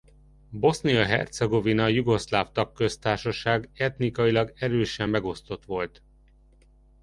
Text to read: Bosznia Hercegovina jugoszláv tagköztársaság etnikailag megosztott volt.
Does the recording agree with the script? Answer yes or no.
no